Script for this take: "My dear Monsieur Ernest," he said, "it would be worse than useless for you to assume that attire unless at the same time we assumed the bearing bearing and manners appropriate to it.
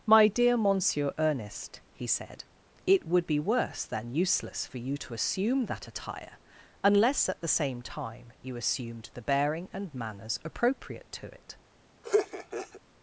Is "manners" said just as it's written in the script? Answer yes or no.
yes